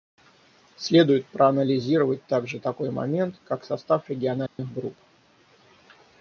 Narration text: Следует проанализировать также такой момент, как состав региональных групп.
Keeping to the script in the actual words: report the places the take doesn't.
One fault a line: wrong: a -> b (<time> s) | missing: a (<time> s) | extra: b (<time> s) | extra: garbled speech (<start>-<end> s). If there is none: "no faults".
no faults